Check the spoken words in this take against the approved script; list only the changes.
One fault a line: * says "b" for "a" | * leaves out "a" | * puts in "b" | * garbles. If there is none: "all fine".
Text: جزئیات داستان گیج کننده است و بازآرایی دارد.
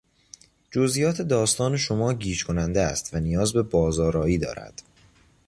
* puts in "شما"
* puts in "نیاز به"